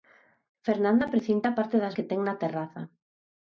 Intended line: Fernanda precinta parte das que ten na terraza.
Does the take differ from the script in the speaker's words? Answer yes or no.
no